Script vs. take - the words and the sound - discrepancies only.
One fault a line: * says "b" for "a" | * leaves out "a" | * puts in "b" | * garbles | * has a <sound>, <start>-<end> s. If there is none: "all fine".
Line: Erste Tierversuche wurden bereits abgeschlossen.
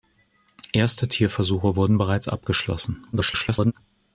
* garbles